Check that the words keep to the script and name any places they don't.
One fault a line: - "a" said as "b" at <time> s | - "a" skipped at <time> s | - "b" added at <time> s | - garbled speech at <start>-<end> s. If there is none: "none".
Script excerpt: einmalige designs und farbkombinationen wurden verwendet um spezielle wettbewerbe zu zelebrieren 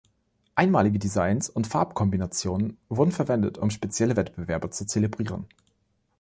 none